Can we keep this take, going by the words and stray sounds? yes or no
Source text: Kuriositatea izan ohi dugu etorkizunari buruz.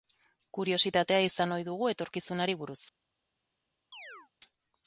no